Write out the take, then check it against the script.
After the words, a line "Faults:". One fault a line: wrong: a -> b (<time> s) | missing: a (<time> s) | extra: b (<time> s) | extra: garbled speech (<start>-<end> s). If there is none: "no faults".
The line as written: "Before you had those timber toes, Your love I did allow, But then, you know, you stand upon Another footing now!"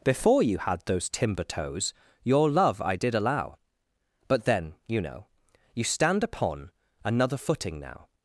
"Before you had those timber toes, Your love I did allow, But then, you know, you stand upon Another footing now!"
Faults:
no faults